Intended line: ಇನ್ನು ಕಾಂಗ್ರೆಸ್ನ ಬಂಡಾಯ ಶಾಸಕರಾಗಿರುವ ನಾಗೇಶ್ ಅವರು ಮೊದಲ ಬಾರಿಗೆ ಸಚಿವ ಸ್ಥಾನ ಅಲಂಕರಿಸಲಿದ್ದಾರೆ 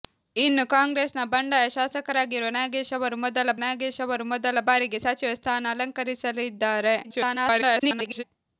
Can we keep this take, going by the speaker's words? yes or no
no